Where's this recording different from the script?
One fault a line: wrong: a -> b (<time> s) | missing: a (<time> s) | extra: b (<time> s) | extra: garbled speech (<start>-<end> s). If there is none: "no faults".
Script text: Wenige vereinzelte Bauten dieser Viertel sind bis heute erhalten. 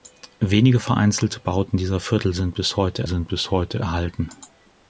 extra: sind bis heute (3.1 s)